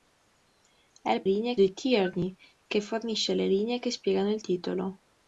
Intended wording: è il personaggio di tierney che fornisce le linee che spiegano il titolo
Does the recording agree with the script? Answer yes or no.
no